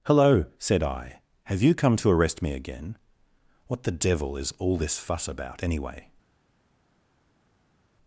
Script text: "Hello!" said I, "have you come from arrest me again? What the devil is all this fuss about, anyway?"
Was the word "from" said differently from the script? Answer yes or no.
yes